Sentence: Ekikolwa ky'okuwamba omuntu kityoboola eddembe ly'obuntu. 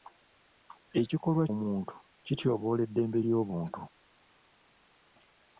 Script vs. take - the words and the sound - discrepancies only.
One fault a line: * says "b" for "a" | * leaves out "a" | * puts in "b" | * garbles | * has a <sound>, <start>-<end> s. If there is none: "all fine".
* leaves out "ky'okuwamba"